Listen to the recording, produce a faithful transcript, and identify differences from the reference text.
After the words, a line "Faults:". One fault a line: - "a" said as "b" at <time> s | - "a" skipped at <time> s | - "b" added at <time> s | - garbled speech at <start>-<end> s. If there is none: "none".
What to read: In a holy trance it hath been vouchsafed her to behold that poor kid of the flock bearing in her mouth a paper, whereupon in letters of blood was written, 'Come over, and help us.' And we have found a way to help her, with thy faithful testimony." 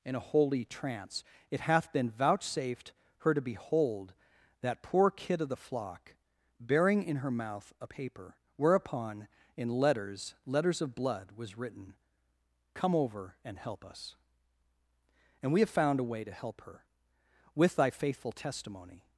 In a holy trance it hath been vouchsafed her to behold that poor kid of the flock bearing in her mouth a paper, whereupon in letters letters of blood was written, 'Come over, and help us.' And we have found a way to help her, with thy faithful testimony."
Faults:
- "letters" added at 10.4 s